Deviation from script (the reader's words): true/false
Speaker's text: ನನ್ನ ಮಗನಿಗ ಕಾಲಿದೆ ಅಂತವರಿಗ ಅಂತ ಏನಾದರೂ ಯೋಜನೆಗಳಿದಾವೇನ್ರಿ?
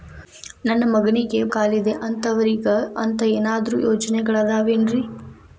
false